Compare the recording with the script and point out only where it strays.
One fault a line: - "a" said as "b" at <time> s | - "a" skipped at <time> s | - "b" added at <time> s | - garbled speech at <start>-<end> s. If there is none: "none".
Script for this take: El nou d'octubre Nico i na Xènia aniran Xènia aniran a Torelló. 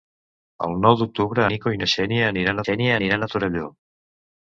none